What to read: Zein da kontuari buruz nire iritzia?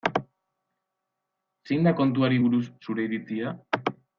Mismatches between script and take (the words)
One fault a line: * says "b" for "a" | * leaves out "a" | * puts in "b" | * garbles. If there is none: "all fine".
* says "zure" for "nire"